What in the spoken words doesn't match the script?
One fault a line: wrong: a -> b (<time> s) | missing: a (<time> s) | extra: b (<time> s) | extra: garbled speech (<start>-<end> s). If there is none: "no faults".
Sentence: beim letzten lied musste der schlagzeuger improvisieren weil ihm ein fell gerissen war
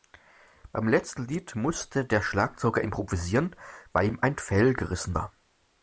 no faults